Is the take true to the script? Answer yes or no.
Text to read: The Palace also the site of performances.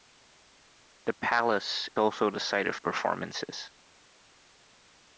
yes